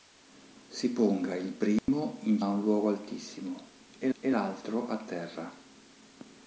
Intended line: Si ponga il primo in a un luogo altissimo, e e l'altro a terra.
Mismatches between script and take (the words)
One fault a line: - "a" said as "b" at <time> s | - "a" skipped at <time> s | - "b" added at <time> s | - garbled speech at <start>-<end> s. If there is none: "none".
none